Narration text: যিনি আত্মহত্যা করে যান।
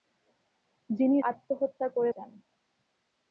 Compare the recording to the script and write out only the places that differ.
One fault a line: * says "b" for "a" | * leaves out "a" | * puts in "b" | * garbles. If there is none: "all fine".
all fine